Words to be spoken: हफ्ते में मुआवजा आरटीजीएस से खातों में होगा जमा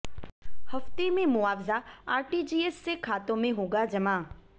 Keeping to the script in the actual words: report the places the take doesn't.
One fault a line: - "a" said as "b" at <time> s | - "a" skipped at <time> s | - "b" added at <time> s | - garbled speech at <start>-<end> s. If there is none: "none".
none